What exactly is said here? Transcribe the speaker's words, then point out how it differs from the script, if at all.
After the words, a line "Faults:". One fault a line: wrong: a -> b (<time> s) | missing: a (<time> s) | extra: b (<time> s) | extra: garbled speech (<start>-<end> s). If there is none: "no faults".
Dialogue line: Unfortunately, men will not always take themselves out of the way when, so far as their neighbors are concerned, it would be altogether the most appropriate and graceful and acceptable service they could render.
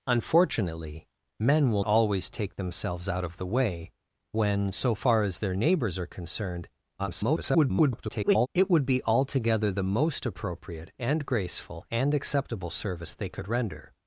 Unfortunately, men will always take themselves out of the way when, so far as their neighbors are concerned, [garbled] it would be altogether the most appropriate and graceful and acceptable service they could render.
Faults:
missing: not (1.8 s)
extra: garbled speech (7.0-8.5 s)